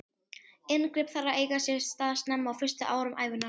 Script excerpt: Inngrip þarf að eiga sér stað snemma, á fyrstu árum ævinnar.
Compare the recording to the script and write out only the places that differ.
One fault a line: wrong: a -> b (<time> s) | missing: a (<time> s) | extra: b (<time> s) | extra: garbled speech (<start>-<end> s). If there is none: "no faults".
no faults